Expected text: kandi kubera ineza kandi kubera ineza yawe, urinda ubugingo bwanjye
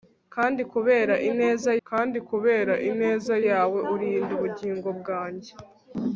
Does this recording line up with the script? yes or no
yes